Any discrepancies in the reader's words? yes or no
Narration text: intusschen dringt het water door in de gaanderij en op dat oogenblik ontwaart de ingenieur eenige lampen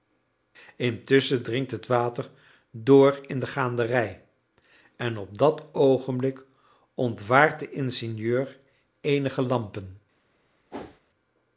no